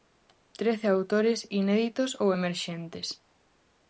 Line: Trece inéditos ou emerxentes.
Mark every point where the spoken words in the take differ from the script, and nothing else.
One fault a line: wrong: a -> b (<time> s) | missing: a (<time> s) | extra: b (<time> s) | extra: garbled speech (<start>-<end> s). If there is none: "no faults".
extra: autores (1.0 s)